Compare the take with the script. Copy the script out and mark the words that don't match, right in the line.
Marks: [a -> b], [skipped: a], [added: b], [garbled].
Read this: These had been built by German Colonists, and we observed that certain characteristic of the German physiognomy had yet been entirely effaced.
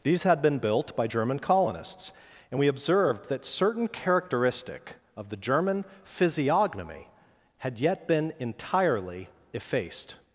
These had been built by German Colonists, and we observed that certain characteristic of the German physiognomy had yet been entirely effaced.